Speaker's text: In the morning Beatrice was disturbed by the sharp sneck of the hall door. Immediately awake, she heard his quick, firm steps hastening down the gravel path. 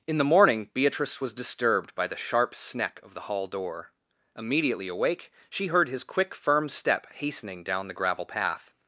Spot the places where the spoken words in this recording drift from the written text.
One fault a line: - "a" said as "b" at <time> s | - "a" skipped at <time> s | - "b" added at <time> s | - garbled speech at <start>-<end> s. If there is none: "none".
- "steps" said as "step" at 6.7 s